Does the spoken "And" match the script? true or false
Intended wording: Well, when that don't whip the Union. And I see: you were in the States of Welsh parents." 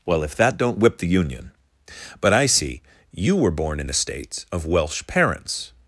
false